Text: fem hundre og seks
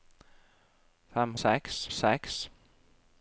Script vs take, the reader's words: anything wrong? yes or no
yes